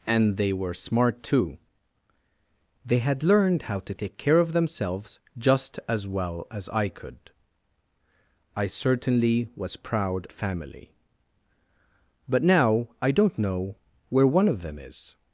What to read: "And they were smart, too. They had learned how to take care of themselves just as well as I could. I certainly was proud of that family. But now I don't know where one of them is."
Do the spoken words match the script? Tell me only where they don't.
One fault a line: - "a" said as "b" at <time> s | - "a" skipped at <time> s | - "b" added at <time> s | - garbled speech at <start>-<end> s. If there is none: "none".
- "of that" skipped at 10.3 s